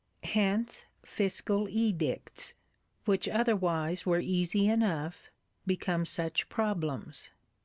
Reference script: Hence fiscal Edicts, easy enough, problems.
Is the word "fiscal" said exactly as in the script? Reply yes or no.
yes